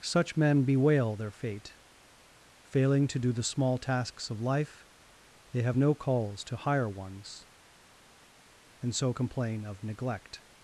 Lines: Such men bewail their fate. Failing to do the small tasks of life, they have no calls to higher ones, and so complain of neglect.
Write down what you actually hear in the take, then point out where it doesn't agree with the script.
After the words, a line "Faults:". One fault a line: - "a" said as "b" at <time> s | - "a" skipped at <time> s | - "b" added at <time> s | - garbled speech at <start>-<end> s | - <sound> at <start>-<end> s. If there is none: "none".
Such men bewail their fate. Failing to do the small tasks of life, they have no calls to higher ones, and so complain of neglect.
Faults:
none